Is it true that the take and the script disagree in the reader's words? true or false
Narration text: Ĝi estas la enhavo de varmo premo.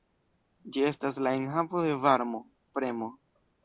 false